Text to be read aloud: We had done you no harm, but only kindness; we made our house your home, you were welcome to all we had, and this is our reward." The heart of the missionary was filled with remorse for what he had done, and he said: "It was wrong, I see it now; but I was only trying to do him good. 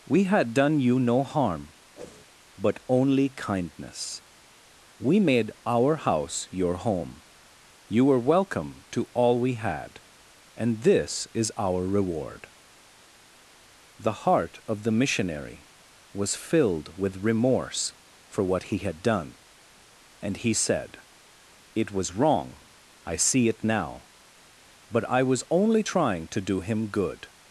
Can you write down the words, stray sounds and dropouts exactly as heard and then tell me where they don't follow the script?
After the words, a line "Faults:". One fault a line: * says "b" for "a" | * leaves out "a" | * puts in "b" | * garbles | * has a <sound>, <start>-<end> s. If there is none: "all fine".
We had done you no harm, but only kindness; we made our house your home, you were welcome to all we had, and this is our reward." The heart of the missionary was filled with remorse for what he had done, and he said: "It was wrong, I see it now; but I was only trying to do him good.
Faults:
* has a whoosh, 2.0-2.2 s